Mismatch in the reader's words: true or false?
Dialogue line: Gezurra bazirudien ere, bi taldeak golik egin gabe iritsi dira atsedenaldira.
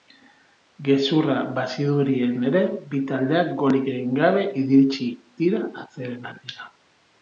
false